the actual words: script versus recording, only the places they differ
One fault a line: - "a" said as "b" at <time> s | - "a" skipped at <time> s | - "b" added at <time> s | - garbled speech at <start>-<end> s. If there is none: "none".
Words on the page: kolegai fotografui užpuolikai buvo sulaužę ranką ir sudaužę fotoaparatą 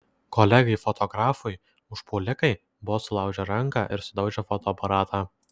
none